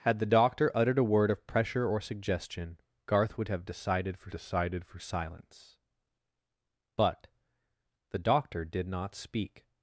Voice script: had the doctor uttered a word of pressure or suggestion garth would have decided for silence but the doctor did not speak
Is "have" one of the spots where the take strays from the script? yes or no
no